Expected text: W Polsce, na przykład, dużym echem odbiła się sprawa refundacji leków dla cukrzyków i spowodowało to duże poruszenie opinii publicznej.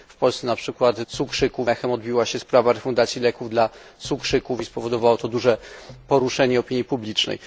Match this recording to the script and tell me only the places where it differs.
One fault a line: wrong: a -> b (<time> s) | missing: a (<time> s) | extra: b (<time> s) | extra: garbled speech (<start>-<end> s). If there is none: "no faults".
wrong: dużym -> cukrzyków (1.1 s)